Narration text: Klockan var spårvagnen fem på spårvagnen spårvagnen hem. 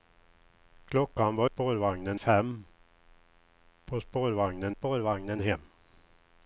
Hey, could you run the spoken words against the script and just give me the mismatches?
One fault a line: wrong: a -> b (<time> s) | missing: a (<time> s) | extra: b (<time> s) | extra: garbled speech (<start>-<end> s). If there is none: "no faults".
no faults